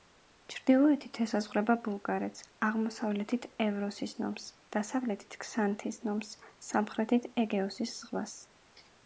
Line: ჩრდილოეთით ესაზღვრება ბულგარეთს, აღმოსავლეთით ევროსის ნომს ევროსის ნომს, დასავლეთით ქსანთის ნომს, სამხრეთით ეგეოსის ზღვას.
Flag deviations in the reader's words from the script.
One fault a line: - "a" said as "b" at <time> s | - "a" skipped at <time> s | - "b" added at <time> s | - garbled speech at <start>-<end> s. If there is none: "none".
- "ევროსის ნომს" skipped at 4.5 s